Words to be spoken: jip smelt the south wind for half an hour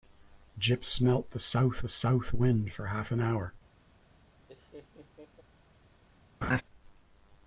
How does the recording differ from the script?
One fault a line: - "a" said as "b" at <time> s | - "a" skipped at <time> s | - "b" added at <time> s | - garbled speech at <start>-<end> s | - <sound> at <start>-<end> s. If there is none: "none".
- "south" added at 1.9 s
- laugh at 4.5-5.4 s
- laugh at 6.4-6.6 s